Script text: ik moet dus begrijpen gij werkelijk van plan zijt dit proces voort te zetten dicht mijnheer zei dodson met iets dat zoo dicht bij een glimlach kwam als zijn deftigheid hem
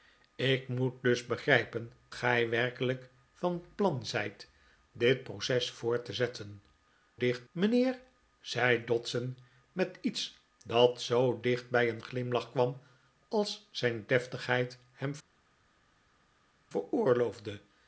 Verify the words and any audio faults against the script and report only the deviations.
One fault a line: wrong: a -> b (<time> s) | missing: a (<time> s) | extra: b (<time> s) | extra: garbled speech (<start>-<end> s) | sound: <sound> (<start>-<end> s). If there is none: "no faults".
no faults